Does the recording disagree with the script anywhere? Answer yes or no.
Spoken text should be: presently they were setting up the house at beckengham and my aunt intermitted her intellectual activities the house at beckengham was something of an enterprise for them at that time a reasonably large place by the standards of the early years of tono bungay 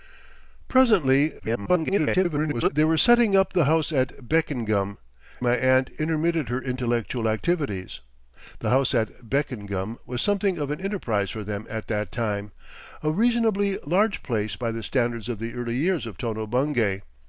yes